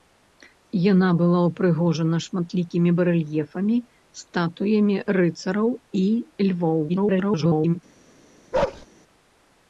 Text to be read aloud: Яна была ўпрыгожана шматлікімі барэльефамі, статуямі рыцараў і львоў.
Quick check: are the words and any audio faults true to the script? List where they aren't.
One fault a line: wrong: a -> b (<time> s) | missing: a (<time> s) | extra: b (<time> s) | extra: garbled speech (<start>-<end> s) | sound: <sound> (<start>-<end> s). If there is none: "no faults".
extra: garbled speech (6.9-7.8 s)
sound: bark (8.5-8.9 s)